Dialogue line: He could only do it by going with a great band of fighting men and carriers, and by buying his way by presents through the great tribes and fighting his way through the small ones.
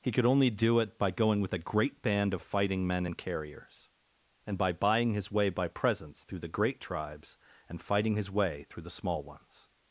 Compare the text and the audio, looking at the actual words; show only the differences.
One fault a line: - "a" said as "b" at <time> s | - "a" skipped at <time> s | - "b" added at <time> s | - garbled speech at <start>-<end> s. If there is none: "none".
none